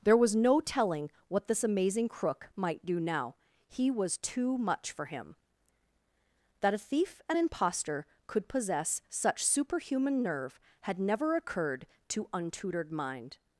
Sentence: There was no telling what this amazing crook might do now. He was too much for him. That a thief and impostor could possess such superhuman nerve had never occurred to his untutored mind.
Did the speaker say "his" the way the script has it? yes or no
no